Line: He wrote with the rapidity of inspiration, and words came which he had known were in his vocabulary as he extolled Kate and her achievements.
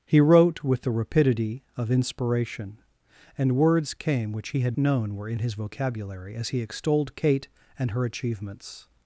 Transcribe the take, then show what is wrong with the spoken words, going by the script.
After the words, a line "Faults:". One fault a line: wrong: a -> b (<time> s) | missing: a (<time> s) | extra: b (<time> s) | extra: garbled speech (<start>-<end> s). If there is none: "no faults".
He wrote with the rapidity of inspiration, and words came which he had known were in his vocabulary as he extolled Kate and her achievements.
Faults:
no faults